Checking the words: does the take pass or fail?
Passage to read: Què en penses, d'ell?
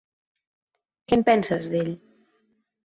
pass